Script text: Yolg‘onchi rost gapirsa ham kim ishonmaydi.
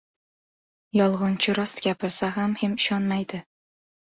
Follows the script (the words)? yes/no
yes